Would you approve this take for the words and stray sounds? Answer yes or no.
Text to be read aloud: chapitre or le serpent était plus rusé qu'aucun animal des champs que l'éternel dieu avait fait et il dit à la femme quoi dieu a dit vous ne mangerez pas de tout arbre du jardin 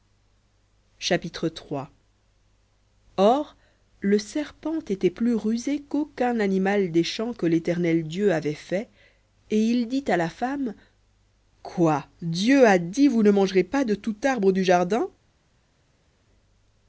yes